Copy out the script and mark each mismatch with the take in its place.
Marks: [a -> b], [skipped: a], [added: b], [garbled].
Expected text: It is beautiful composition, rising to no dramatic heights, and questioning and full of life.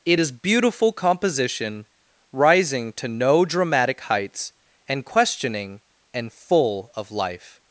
It is beautiful composition, rising to no dramatic heights, and questioning and full of life.